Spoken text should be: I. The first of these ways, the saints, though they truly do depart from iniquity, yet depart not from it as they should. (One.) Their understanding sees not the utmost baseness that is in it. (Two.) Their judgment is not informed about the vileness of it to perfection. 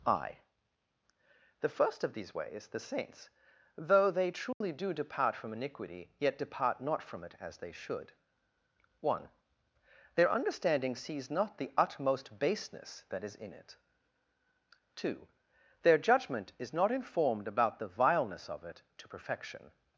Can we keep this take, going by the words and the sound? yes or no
no